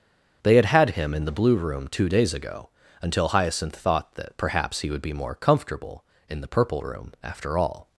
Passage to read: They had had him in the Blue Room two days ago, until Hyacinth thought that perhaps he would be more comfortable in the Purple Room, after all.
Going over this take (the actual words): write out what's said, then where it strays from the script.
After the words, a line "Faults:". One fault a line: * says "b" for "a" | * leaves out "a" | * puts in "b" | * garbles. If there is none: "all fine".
They had had him in the Blue Room two days ago, until Hyacinth thought that perhaps he would be more comfortable in the Purple Room, after all.
Faults:
all fine